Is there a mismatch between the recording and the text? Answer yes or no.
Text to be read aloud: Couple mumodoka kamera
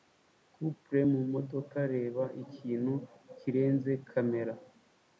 yes